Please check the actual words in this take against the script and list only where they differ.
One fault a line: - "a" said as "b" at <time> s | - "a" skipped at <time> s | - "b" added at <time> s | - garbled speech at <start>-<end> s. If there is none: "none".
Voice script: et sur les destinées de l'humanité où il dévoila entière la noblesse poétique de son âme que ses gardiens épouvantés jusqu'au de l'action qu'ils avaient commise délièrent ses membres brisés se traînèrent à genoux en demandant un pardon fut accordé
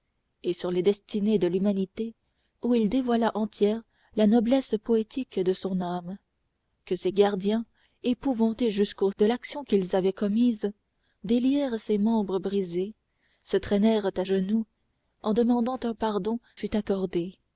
none